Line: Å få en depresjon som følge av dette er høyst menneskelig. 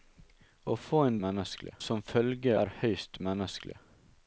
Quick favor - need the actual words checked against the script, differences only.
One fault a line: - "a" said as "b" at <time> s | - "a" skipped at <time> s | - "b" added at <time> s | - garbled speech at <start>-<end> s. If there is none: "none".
- "depresjon" said as "menneskelig" at 1.3 s
- "av dette" skipped at 2.5 s